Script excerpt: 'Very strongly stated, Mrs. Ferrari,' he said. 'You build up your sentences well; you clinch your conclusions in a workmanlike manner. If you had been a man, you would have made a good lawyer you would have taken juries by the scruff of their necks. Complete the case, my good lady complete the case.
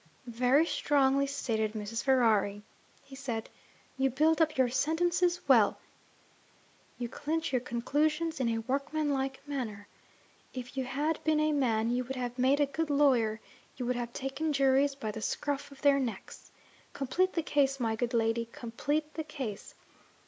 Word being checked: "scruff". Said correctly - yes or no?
yes